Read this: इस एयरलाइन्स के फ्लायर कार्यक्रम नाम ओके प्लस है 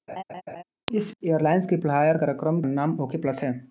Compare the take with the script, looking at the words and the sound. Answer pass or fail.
fail